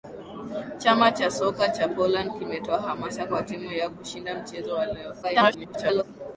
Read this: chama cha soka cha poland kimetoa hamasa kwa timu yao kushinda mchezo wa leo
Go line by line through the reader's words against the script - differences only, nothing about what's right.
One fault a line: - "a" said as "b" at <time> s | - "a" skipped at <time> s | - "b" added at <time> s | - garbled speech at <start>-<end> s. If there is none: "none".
- garbled speech at 5.2-6.0 s